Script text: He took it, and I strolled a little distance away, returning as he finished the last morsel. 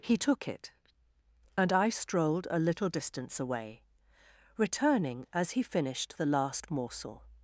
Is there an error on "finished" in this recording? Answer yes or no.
no